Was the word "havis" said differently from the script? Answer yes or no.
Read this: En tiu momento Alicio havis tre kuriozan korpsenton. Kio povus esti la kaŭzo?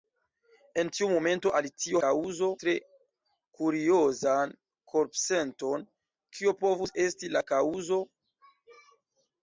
yes